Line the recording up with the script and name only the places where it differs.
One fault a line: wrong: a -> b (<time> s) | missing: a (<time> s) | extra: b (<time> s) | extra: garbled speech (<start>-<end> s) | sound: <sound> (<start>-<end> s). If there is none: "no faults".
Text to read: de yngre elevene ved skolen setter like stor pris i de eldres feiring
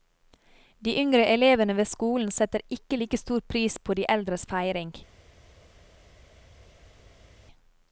extra: ikke (2.7 s)
wrong: i -> på (3.8 s)